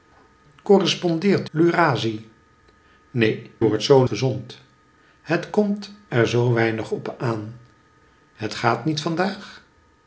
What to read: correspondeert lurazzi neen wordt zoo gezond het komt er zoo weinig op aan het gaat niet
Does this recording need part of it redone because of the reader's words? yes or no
no